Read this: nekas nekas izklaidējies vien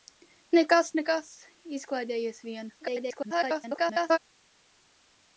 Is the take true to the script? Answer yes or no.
no